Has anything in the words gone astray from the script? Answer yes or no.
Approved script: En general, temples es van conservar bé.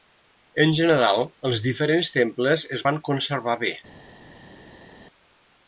yes